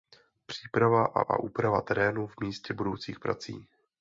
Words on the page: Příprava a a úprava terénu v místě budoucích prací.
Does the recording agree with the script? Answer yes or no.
yes